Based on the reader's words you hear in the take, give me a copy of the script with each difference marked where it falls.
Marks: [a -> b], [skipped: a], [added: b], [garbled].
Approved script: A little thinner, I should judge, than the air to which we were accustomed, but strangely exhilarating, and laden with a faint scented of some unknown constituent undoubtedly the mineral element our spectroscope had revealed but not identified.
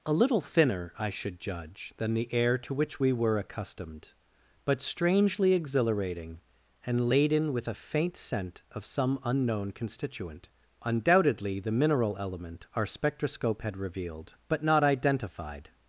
A little thinner, I should judge, than the air to which we were accustomed, but strangely exhilarating, and laden with a faint [scented -> scent] of some unknown constituent undoubtedly the mineral element our spectroscope had revealed but not identified.